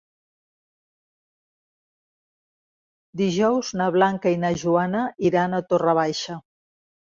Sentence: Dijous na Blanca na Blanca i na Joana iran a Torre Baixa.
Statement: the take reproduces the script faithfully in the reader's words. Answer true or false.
false